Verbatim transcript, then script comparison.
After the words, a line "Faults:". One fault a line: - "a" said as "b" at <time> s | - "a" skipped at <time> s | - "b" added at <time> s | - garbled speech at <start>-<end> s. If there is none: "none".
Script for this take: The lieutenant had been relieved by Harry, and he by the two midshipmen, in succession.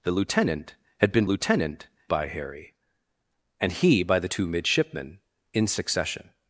The lieutenant had been lieutenant by Harry, and he by the two midshipmen, in succession.
Faults:
- "relieved" said as "lieutenant" at 1.2 s